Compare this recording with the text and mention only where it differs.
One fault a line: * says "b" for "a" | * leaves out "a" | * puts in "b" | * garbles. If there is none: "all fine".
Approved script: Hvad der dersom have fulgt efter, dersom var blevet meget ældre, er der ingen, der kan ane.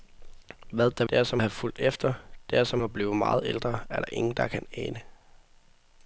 all fine